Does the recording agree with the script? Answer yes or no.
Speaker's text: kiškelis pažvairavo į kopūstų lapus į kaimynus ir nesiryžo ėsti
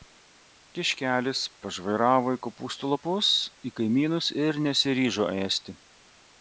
yes